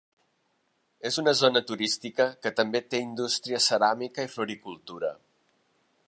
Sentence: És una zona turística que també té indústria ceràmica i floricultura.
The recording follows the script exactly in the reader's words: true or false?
true